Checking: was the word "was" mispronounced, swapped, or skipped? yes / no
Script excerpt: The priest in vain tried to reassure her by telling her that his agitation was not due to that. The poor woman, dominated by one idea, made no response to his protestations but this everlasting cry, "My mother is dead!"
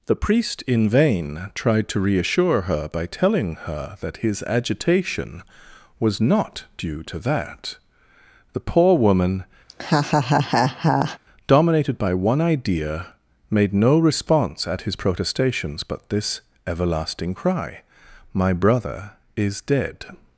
no